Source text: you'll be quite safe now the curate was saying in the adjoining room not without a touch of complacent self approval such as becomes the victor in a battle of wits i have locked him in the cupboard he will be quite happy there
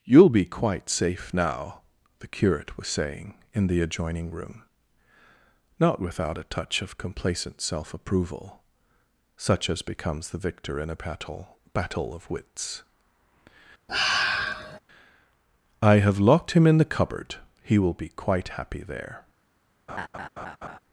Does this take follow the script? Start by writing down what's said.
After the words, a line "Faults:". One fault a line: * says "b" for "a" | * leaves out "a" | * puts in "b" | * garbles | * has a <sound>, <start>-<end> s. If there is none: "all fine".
you'll be quite safe now the curate was saying in the adjoining room not without a touch of complacent self approval such as becomes the victor in a battle battle of wits i have locked him in the cupboard he will be quite happy there
Faults:
* puts in "battle"
* has a sigh, 13.9-14.8 s
* has a laugh, 19.9-20.8 s